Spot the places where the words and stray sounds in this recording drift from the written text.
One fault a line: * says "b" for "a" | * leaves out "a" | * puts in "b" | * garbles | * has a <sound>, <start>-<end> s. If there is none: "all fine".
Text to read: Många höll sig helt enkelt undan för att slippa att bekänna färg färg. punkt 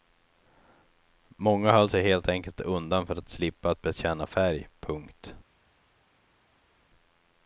* leaves out "färg"